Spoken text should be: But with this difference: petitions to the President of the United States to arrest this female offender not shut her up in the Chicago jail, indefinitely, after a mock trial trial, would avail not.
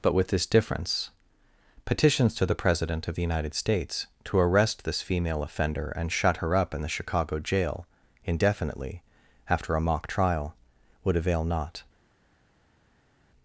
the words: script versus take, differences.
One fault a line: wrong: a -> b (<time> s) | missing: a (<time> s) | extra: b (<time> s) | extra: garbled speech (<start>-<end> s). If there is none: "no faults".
wrong: not -> and (5.9 s)
missing: trial (10.6 s)